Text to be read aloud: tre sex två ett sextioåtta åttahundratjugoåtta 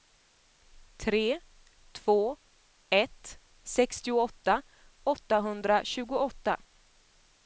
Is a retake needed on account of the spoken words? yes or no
yes